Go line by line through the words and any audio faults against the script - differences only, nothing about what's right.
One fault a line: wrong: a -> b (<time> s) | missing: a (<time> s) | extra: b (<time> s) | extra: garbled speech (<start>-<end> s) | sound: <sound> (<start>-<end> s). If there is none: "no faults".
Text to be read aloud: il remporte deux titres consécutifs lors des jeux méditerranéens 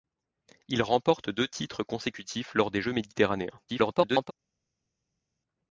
extra: garbled speech (3.7-4.3 s)